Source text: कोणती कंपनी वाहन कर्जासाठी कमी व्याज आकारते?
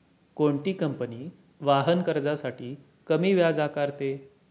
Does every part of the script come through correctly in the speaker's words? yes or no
yes